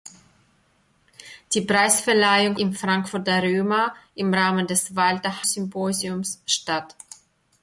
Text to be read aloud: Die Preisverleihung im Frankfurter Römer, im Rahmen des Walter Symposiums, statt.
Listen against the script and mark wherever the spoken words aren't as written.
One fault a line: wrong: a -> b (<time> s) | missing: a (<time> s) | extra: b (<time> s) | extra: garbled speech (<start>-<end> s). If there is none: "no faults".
no faults